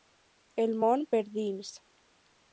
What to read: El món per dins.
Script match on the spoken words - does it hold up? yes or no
yes